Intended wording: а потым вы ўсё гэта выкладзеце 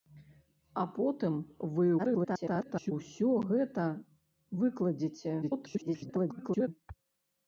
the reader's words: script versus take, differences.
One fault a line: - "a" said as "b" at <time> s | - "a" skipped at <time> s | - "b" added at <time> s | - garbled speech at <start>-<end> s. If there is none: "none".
- garbled speech at 2.0-2.9 s
- garbled speech at 5.4-6.7 s